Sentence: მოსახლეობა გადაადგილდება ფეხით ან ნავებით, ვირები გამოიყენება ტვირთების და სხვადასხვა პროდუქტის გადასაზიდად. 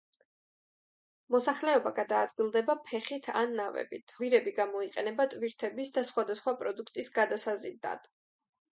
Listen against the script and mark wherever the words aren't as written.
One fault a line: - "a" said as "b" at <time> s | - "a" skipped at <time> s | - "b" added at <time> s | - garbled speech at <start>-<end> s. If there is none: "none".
none